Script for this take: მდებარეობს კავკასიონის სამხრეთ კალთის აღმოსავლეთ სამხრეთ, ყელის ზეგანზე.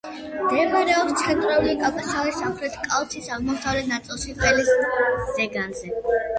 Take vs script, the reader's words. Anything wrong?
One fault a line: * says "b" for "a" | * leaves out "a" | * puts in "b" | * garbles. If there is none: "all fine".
* puts in "ცენტრალური"
* says "ნაწილში" for "სამხრეთ"